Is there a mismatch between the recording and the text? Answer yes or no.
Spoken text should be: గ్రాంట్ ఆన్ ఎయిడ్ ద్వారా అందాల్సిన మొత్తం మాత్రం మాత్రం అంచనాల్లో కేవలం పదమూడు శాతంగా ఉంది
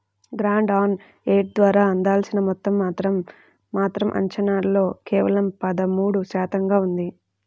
no